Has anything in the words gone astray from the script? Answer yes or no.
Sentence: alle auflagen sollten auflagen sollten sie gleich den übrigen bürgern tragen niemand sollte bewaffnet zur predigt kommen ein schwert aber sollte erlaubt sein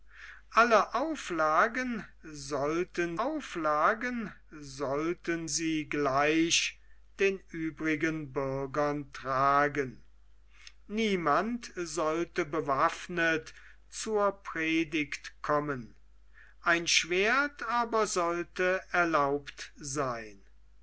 no